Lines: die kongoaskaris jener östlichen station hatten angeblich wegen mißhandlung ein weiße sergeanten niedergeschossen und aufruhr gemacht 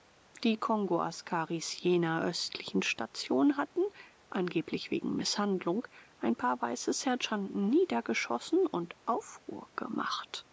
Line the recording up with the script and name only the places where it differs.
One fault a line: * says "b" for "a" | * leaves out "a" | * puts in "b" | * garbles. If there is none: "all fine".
* puts in "paar"